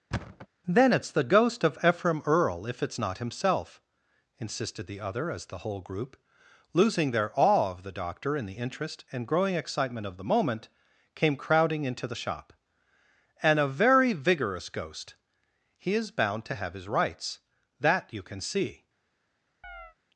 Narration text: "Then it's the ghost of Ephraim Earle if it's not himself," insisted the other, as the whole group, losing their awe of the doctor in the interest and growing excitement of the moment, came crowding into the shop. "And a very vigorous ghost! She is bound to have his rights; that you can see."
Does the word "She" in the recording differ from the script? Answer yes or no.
yes